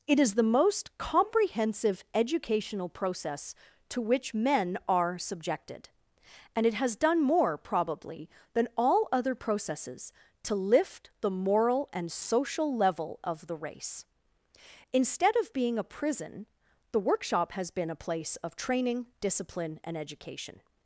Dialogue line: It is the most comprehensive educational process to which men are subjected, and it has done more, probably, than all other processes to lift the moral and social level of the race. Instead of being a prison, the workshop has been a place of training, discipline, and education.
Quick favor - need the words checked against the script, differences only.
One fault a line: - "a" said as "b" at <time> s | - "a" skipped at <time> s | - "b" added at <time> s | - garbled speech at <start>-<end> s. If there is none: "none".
none